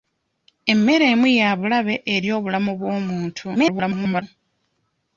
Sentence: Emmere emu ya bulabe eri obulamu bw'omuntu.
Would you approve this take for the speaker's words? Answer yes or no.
no